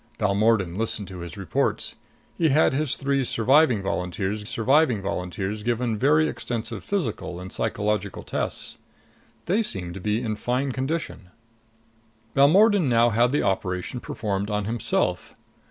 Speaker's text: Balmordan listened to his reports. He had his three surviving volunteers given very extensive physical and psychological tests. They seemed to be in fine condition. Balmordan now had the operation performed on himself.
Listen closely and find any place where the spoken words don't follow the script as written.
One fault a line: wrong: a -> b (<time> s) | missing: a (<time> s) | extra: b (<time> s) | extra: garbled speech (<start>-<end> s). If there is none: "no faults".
extra: surviving volunteers (4.4 s)